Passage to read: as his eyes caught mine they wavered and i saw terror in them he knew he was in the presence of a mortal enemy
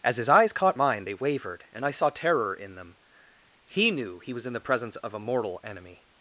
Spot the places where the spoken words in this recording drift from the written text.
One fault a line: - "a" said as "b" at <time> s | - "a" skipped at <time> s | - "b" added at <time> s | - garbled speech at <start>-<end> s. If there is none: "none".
none